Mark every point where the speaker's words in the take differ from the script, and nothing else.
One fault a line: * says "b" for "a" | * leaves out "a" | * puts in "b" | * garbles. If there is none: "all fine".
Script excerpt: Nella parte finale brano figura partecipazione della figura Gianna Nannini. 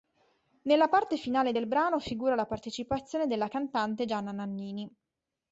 * puts in "del"
* puts in "la"
* says "cantante" for "figura"